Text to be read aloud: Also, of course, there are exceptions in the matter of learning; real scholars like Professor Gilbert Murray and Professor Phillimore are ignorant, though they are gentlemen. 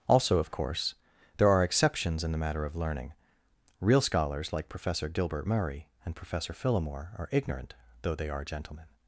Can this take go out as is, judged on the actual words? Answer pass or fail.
pass